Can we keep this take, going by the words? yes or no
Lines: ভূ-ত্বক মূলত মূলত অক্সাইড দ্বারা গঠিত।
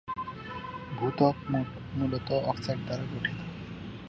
no